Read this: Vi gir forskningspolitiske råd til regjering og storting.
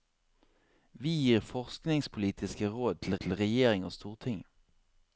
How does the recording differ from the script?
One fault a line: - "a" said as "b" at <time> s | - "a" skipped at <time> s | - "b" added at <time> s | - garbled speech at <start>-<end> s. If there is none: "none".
- "til" added at 3.2 s